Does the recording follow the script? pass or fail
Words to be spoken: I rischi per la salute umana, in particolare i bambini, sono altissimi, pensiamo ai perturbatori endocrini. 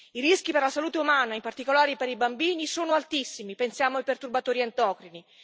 fail